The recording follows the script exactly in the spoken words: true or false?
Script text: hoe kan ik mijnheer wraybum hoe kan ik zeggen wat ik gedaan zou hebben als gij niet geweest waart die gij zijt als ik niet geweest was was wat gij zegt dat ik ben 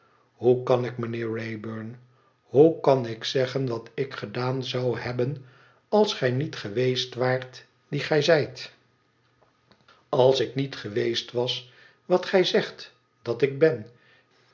false